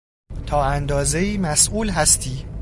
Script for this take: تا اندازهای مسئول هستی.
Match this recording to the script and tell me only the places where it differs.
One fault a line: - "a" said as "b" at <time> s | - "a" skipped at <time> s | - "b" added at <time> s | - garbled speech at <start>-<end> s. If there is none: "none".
none